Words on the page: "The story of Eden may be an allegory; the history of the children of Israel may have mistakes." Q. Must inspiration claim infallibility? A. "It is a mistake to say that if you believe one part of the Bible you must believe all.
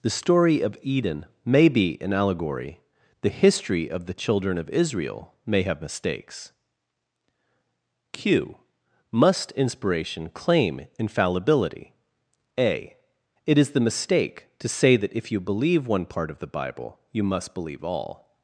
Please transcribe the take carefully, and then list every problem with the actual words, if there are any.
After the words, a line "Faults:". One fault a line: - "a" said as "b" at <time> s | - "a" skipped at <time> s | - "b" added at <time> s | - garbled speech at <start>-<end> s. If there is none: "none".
"The story of Eden may be an allegory; the history of the children of Israel may have mistakes." Q. Must inspiration claim infallibility? A. "It is the mistake to say that if you believe one part of the Bible you must believe all.
Faults:
- "a" said as "the" at 13.7 s